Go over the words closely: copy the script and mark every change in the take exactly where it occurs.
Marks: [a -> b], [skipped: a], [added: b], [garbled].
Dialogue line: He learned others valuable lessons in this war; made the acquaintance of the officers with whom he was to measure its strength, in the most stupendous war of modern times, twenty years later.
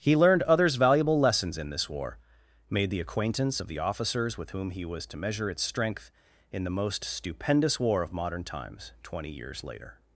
He learned others valuable lessons in this war; made the acquaintance of the officers with whom he was to measure its strength, in the most stupendous war of modern times, twenty years later.